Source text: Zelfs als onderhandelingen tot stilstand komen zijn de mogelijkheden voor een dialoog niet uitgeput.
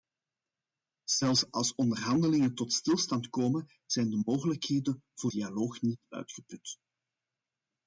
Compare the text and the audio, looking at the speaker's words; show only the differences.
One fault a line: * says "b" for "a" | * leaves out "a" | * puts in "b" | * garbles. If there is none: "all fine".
* leaves out "een"